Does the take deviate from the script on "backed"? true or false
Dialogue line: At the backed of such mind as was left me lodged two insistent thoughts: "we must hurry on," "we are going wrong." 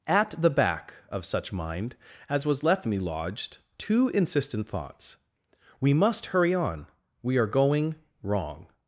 true